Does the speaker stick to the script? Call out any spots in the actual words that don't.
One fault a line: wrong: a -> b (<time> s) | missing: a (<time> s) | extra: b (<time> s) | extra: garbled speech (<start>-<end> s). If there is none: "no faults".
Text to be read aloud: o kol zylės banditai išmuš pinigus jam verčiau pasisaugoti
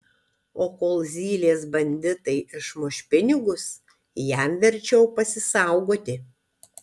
no faults